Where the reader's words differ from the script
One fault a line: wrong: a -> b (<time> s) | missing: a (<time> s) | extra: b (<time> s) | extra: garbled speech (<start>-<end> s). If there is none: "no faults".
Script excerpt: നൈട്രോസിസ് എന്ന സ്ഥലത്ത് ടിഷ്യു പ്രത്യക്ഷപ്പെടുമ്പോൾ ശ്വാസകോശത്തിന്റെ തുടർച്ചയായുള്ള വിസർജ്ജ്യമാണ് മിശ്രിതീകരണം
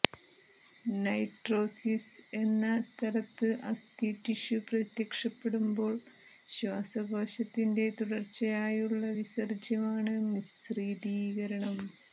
extra: അസ്ഥി (3.7 s)